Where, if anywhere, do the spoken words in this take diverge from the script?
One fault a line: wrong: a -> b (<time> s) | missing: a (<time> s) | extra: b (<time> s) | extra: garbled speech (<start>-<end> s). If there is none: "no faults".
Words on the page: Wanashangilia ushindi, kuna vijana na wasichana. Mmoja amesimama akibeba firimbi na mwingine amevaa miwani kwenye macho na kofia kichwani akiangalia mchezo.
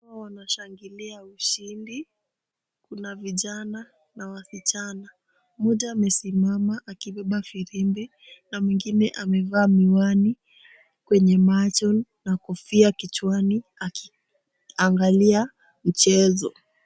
no faults